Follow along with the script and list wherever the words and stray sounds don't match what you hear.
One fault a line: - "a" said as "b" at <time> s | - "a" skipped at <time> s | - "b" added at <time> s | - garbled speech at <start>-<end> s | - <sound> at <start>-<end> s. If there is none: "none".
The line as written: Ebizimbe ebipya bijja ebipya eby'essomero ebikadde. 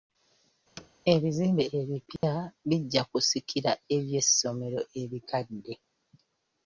- thud at 0.8-0.9 s
- dropout at 2.2-2.2 s
- "ebipya" said as "kusikira" at 3.1 s